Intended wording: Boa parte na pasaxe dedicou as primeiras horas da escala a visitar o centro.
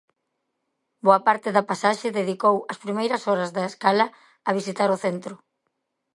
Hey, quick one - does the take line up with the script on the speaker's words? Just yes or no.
no